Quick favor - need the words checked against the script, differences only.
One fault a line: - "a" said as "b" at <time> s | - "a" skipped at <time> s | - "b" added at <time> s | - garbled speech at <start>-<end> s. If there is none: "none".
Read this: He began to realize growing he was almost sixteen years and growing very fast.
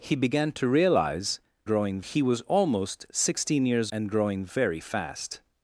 none